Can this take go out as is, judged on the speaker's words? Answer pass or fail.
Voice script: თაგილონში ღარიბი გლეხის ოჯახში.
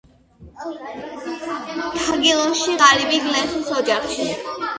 pass